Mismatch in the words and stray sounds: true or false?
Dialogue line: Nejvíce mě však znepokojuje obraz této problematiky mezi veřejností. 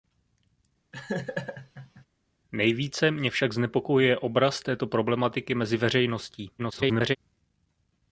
true